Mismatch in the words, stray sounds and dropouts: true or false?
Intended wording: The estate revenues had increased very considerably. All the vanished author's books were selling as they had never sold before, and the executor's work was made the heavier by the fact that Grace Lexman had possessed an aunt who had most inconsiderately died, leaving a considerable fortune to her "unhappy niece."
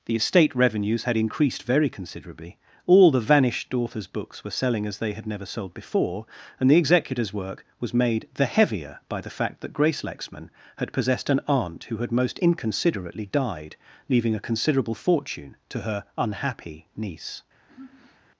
true